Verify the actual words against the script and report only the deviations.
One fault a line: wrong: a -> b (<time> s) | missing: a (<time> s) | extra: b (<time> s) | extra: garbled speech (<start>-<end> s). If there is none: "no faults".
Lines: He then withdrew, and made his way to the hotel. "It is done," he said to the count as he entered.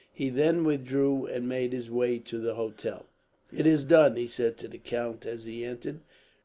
no faults